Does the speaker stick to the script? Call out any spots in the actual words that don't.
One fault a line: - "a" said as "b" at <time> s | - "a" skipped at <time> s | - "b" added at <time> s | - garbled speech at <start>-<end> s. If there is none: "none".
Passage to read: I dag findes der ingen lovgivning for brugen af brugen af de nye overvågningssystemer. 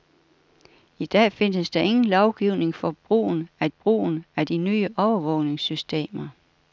none